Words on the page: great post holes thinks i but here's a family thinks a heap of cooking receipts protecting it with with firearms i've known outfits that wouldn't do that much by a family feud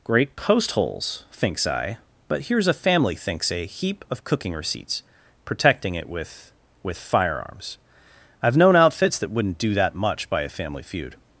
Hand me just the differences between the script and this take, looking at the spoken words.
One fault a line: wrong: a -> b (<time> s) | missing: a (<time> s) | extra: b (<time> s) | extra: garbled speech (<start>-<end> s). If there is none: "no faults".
no faults